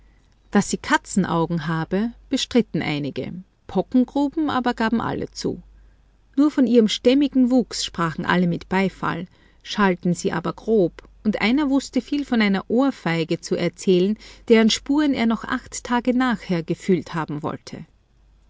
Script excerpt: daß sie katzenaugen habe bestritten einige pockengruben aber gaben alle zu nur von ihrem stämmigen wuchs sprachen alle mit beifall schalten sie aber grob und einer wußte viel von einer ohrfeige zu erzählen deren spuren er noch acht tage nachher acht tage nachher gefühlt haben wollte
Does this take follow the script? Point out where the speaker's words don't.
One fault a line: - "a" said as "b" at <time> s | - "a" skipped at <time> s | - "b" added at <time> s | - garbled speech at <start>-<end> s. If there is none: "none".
- "acht tage nachher" skipped at 16.6 s